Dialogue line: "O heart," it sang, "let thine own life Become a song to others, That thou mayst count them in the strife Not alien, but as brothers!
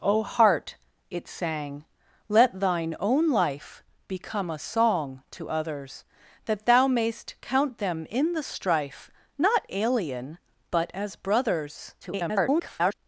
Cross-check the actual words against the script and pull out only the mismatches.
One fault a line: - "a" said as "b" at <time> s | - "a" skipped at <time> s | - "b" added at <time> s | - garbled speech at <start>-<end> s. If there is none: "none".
- garbled speech at 12.0-12.9 s